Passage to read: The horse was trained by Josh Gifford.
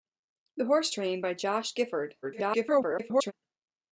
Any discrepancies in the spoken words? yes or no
yes